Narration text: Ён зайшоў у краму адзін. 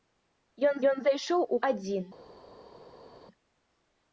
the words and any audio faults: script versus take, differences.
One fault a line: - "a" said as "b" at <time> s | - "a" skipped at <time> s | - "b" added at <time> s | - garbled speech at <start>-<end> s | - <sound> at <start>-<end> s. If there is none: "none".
- "ён" added at 0.9 s
- "краму" skipped at 1.6 s